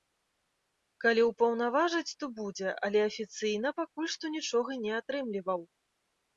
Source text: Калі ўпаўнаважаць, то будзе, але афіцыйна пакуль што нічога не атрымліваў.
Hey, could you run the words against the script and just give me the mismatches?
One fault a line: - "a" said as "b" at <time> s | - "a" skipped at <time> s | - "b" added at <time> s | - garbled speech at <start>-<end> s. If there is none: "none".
none